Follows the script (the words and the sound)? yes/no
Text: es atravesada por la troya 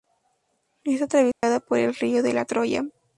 no